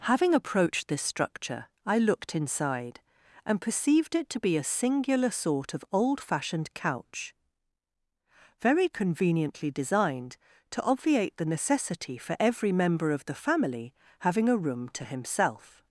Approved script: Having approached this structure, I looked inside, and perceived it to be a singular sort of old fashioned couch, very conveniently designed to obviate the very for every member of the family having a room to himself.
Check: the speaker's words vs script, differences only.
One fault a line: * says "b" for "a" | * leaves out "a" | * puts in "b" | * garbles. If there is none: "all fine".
* says "necessity" for "very"